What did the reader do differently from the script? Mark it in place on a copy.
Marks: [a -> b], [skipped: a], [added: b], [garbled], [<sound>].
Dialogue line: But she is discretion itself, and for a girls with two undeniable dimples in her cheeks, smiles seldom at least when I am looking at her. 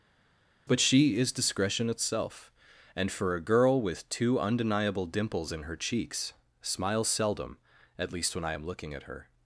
But she is discretion itself, and for a [girls -> girl] with two undeniable dimples in her cheeks, smiles seldom at least when I am looking at her.